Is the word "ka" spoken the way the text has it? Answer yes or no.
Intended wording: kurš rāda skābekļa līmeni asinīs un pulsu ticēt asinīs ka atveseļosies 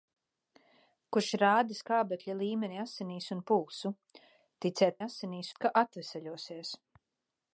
yes